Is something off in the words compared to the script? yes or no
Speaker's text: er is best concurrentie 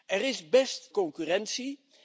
no